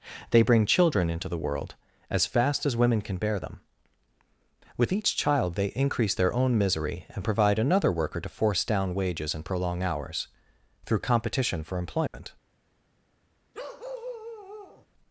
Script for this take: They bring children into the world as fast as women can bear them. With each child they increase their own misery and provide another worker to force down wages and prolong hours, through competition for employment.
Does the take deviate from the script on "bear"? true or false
false